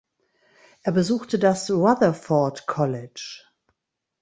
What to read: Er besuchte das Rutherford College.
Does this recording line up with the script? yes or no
yes